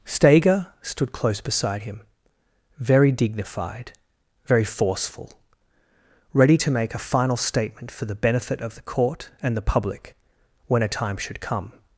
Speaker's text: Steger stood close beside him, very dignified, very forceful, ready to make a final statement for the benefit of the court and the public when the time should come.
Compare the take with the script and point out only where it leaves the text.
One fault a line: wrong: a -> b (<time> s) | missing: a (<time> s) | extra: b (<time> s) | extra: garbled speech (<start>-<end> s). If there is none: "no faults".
wrong: the -> a (10.8 s)